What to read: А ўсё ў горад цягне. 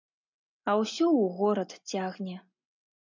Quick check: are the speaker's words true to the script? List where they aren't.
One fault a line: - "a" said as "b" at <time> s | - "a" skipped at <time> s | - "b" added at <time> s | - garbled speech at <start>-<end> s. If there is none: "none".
none